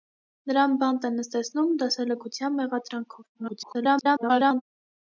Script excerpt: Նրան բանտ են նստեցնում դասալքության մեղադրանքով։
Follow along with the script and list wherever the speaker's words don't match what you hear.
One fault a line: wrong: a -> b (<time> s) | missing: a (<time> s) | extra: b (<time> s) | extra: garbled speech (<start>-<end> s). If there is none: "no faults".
extra: garbled speech (3.3-4.6 s)